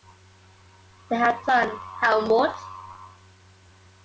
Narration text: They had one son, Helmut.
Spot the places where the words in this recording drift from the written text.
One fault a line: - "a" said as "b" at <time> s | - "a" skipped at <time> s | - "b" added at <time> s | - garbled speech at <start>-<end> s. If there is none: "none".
- "one" skipped at 1.4 s